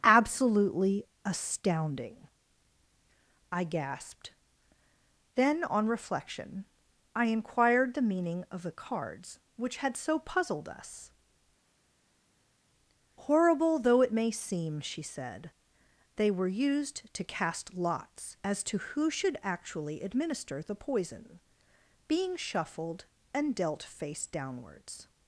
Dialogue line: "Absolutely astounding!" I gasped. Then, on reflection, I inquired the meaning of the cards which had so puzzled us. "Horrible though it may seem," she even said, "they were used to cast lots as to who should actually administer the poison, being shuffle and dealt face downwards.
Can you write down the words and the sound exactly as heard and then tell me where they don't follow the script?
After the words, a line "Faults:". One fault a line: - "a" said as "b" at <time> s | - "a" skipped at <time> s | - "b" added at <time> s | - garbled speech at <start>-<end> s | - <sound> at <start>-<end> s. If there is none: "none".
"Absolutely astounding!" I gasped. Then, on reflection, I inquired the meaning of the cards which had so puzzled us. "Horrible though it may seem," she said, "they were used to cast lots as to who should actually administer the poison, being shuffled and dealt face downwards.
Faults:
- "even" skipped at 15.0 s
- "shuffle" said as "shuffled" at 22.4 s